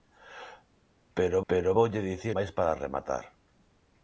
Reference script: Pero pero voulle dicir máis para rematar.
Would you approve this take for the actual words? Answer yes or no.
yes